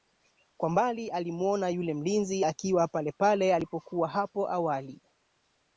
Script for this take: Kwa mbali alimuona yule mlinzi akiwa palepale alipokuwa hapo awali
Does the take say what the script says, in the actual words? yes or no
yes